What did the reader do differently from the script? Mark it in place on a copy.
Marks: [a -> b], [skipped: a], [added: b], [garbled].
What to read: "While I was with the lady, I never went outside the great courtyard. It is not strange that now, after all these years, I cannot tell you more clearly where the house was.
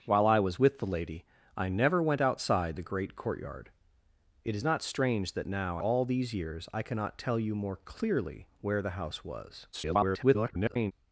"While I was with the lady, I never went outside the great courtyard. It is not strange that now, [skipped: after] all these years, I cannot tell you more clearly where the house was. [garbled]